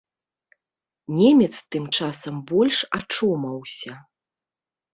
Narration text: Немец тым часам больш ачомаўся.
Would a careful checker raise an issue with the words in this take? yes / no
no